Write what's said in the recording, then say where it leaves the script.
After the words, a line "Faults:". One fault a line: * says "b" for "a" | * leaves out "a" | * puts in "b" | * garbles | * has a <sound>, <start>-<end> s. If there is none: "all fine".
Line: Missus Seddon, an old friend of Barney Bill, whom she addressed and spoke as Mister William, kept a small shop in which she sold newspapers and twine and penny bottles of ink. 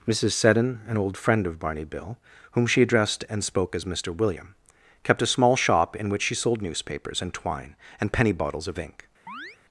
Missus Seddon, an old friend of Barney Bill, whom she addressed and spoke as Mister William, kept a small shop in which she sold newspapers and twine and penny bottles of ink.
Faults:
* has a chirp, 9.3-9.6 s